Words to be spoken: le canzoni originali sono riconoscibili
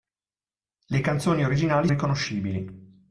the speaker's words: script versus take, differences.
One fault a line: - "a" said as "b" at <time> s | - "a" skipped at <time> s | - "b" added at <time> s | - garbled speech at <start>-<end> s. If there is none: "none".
- "sono" skipped at 1.9 s